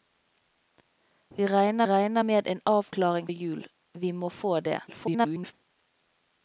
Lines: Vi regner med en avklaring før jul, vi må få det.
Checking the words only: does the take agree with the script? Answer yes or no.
no